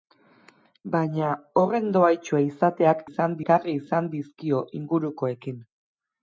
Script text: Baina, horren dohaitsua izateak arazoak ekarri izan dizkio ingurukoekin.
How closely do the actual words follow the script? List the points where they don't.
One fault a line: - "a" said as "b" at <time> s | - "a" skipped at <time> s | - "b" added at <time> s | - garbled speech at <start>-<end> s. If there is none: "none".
- "arazoak" said as "izan" at 3.1 s